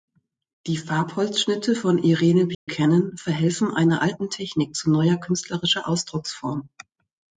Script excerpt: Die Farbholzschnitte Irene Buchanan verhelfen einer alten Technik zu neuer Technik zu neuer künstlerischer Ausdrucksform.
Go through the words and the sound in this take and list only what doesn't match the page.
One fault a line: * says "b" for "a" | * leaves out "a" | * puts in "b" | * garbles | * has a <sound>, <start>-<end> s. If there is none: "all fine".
* puts in "von"
* has a dropout, 2.5-2.7 s
* leaves out "Technik zu neuer"